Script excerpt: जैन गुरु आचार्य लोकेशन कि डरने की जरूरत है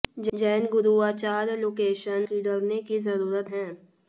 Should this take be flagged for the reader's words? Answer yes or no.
no